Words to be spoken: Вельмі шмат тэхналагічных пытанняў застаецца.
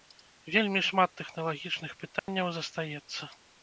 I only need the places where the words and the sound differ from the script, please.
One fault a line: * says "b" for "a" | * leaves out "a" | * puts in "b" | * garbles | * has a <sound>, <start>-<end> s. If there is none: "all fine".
* has a dropout, 2.2-2.3 s